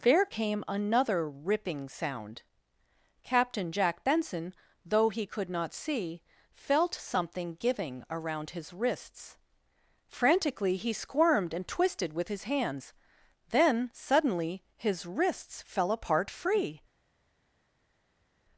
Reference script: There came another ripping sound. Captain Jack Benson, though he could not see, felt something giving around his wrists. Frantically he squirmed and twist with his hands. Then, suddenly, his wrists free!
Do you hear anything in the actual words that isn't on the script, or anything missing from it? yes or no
yes